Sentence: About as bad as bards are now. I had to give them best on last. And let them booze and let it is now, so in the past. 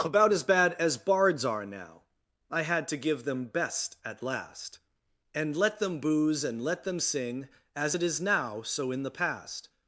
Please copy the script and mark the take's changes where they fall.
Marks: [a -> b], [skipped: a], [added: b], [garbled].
About as bad as bards are now. I had to give them best [on -> at] last. And let them booze and let [added: them sing As] it is now, so in the past.